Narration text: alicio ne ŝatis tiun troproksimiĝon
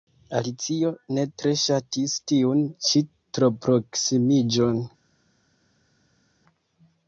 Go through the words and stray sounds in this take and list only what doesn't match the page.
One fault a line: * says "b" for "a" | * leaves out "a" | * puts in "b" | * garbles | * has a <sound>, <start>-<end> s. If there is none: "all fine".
* puts in "tre"
* puts in "ĉi"